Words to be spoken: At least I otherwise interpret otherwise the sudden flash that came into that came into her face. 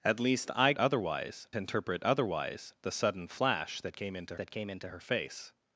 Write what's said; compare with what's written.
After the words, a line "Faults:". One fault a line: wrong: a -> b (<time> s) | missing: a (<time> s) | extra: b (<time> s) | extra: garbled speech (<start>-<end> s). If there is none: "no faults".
At least I otherwise interpret otherwise the sudden flash that came into that came into her face.
Faults:
no faults